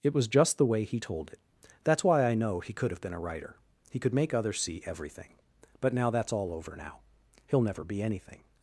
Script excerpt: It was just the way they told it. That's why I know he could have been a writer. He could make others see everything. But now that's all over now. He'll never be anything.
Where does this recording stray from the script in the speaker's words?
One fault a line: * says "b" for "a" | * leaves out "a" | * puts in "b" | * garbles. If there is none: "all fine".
* says "he" for "they"